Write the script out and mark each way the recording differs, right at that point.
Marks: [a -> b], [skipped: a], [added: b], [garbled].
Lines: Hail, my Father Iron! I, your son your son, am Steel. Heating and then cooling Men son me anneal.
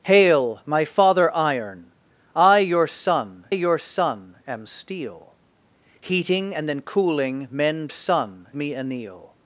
Hail, my Father Iron! I, your son your son, am Steel. Heating and then cooling Men son me anneal.